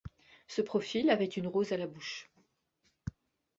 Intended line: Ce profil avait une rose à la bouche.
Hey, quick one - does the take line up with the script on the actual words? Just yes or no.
yes